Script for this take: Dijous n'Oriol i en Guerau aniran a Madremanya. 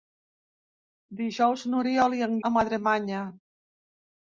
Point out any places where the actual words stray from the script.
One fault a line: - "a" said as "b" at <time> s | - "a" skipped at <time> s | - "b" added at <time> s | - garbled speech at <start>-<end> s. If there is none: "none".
- "Guerau aniran" skipped at 2.3 s